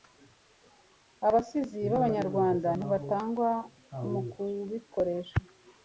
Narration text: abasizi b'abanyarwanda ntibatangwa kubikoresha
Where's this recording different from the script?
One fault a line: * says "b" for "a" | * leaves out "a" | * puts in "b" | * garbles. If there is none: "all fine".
* puts in "mu"